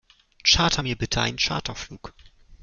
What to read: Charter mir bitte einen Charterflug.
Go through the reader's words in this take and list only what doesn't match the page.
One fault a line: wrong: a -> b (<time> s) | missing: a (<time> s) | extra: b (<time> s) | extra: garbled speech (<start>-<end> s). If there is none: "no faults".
no faults